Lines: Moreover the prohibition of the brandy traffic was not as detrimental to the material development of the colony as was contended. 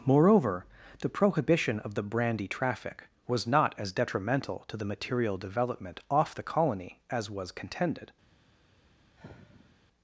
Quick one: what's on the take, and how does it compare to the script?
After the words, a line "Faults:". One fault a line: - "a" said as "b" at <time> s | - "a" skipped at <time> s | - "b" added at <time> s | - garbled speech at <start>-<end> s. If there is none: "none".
Moreover the prohibition of the brandy traffic was not as detrimental to the material development off the colony as was contended.
Faults:
- "of" said as "off" at 6.1 s